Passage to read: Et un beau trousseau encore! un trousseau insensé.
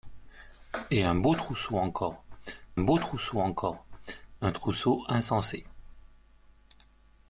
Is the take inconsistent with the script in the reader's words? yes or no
yes